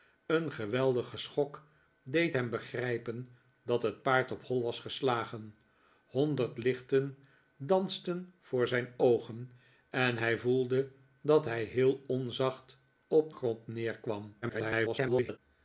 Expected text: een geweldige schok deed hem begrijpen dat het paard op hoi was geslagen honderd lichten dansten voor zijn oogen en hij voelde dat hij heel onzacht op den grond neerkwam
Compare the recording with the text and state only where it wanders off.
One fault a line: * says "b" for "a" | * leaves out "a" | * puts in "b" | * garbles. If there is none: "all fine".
* leaves out "den"
* garbles